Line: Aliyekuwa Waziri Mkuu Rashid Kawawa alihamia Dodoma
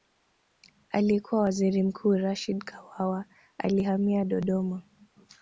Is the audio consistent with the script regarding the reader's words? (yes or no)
yes